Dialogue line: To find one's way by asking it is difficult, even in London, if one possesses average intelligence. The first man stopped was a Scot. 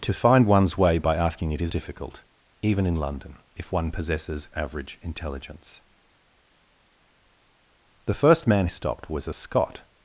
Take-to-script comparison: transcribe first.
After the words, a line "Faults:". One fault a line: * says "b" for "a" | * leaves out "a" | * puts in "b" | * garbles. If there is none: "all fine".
To find one's way by asking it is difficult, even in London, if one possesses average intelligence. The first man stopped was a Scot.
Faults:
all fine